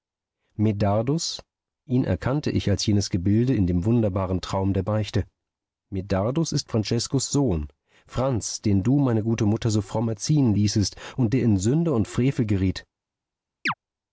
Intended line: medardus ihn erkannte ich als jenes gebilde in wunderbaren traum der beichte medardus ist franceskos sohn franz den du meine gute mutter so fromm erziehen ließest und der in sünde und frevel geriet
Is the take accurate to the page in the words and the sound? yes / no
no